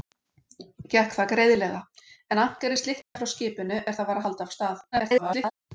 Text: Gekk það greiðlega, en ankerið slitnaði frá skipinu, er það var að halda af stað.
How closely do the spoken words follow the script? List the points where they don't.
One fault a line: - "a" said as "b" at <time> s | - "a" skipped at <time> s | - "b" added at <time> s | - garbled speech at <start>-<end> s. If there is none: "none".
- garbled speech at 4.9-5.5 s